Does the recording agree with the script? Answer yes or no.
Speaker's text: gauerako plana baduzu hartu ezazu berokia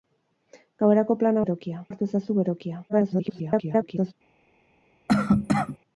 no